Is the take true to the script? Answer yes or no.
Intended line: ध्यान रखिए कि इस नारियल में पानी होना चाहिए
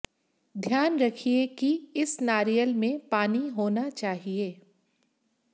yes